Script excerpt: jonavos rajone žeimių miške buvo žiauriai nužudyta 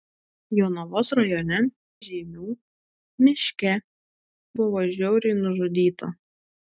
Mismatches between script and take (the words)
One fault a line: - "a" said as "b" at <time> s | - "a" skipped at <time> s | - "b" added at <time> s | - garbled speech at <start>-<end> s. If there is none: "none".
none